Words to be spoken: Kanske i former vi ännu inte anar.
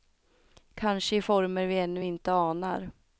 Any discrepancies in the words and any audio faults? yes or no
no